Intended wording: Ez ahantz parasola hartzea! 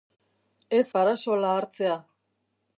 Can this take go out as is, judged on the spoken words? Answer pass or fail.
fail